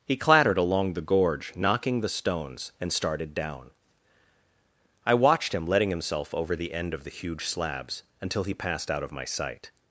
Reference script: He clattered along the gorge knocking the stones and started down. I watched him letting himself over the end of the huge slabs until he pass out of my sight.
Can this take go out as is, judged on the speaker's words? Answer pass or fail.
fail